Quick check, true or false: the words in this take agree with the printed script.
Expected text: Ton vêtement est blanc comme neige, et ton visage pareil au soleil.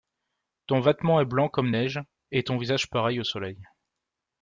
true